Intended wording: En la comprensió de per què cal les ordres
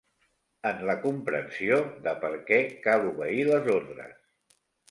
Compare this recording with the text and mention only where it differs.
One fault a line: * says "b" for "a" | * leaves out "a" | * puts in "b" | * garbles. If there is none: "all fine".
* puts in "obeir"